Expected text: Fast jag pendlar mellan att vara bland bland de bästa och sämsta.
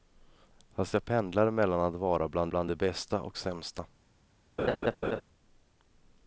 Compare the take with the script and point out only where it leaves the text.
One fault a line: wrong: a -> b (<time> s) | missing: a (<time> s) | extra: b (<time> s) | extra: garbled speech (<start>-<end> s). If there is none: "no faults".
no faults